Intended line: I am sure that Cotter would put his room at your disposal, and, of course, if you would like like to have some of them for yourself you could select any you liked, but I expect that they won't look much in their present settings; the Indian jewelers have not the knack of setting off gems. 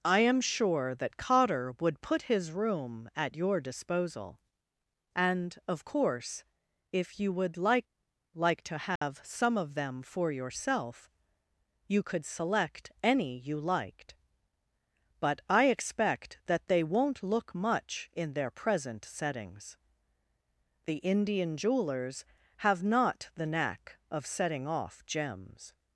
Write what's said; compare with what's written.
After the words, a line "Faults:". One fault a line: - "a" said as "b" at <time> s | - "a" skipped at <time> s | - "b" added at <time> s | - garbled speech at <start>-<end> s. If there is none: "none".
I am sure that Cotter would put his room at your disposal, and, of course, if you would like like to have some of them for yourself you could select any you liked, but I expect that they won't look much in their present settings; the Indian jewelers have not the knack of setting off gems.
Faults:
none